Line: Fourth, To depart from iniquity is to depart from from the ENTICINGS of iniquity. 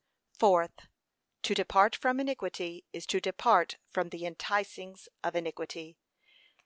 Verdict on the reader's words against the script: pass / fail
fail